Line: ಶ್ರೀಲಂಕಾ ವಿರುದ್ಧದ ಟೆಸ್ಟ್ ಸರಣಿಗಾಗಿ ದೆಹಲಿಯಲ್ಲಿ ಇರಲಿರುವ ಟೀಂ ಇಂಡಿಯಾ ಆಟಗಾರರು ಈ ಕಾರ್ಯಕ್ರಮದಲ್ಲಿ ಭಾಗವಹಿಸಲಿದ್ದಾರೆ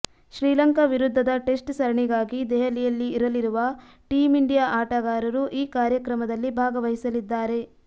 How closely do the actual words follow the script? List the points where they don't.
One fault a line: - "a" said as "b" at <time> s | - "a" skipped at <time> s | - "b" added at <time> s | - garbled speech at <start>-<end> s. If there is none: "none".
none